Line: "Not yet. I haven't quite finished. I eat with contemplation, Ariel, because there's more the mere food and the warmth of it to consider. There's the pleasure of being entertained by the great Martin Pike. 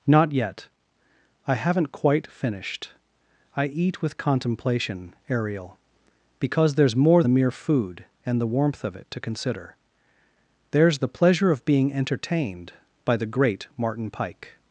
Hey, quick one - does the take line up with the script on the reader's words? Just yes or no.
yes